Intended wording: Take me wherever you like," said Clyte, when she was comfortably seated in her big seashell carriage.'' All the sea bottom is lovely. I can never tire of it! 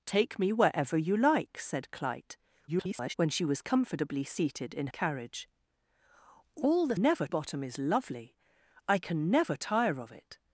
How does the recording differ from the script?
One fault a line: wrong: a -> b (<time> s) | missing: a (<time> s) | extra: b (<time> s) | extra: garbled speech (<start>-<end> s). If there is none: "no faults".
extra: garbled speech (2.7-3.1 s)
missing: her big seashell (4.9 s)
wrong: sea -> never (7.0 s)